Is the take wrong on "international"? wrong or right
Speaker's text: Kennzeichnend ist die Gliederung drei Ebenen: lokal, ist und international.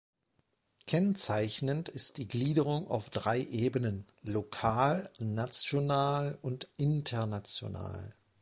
right